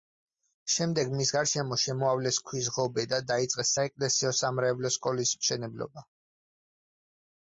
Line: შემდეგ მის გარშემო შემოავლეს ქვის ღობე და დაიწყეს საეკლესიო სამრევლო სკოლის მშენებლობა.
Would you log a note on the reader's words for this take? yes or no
no